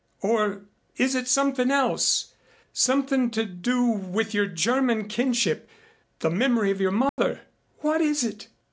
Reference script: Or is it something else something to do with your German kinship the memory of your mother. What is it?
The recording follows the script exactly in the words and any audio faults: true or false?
false